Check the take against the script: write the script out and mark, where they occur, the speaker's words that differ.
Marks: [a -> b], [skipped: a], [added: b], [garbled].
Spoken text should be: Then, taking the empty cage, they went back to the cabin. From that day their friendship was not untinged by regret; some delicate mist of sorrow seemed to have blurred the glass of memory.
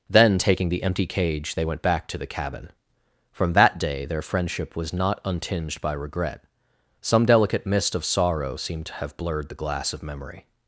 Then, taking the empty cage, they went back to the cabin. From that day their friendship was not untinged by regret; some delicate mist of sorrow seemed to have blurred the glass of memory.